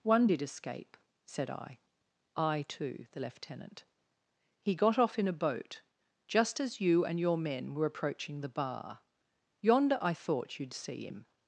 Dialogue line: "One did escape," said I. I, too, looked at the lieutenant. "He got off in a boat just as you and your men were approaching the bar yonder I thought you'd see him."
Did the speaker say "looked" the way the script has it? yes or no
no